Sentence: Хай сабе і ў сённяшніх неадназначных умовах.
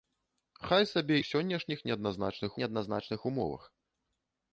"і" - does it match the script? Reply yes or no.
no